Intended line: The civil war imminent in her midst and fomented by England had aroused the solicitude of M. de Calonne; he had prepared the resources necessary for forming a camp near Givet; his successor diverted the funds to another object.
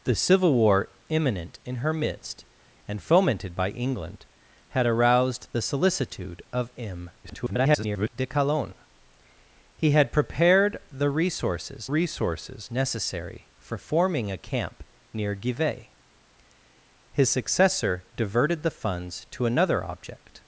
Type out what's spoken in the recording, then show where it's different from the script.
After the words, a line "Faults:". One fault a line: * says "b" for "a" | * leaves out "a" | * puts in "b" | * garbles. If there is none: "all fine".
The civil war imminent in her midst and fomented by England had aroused the solicitude of M. [garbled] de Calonne; he had prepared the resources resources necessary for forming a camp near Givet; his successor diverted the funds to another object.
Faults:
* garbles
* puts in "resources"